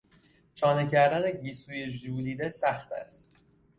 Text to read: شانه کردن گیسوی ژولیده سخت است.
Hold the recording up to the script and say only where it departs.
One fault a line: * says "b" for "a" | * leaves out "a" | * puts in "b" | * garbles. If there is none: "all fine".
all fine